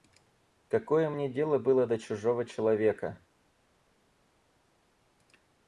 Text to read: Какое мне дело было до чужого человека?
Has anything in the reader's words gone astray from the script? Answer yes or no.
no